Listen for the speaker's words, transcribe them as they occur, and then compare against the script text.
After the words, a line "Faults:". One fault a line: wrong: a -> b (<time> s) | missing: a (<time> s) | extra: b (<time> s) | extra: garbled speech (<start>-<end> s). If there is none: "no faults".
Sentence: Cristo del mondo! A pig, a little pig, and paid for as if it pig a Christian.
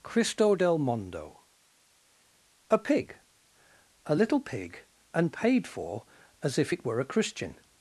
Cristo del mondo! A pig, a little pig, and paid for as if it were a Christian.
Faults:
wrong: pig -> were (6.8 s)